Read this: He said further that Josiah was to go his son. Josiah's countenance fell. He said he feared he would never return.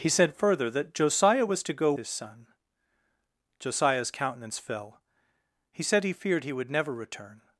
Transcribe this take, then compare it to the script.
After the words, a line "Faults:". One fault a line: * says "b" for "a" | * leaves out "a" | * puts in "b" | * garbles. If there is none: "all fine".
He said further that Josiah was to go his son. Josiah's countenance fell. He said he feared he would never return.
Faults:
all fine